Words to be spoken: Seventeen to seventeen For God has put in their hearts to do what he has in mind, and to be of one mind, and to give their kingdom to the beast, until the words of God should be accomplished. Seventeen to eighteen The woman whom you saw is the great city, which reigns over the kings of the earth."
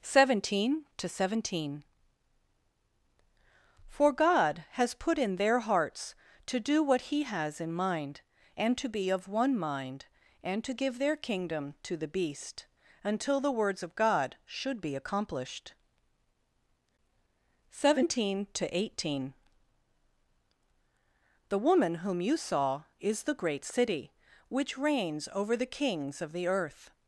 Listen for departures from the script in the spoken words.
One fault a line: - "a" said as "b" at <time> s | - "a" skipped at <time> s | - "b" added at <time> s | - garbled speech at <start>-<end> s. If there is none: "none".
none